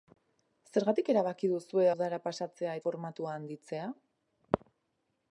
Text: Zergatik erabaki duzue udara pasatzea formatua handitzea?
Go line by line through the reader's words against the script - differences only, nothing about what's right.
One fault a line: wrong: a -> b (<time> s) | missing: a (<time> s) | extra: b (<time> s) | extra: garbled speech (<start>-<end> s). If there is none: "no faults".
no faults